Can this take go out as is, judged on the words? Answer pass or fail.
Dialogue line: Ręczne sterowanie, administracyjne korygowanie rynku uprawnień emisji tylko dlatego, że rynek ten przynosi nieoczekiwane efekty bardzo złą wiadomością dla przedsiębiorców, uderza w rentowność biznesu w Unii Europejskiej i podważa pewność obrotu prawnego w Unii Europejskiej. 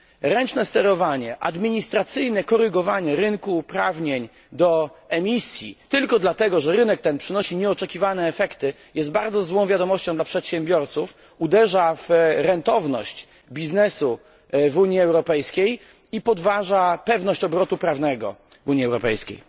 fail